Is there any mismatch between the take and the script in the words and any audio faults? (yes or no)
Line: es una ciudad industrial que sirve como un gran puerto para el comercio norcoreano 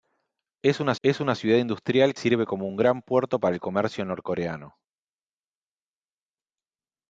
yes